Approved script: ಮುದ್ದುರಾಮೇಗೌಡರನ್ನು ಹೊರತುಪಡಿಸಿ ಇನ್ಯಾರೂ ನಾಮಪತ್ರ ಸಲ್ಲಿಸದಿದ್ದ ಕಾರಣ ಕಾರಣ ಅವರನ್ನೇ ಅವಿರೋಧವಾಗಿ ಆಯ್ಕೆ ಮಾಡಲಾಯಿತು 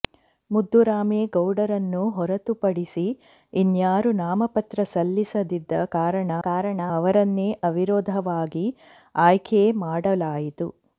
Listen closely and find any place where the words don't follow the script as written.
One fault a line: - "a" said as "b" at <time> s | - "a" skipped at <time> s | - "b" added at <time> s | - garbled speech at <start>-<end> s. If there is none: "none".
none